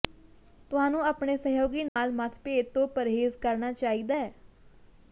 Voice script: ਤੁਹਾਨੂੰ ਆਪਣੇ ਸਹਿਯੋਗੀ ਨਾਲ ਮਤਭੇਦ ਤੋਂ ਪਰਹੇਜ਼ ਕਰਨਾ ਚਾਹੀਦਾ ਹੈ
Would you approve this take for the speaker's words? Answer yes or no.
yes